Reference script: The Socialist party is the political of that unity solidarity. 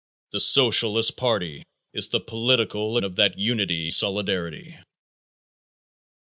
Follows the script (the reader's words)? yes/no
yes